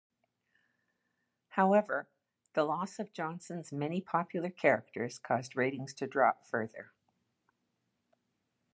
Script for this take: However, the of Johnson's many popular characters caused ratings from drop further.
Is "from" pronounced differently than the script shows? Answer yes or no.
yes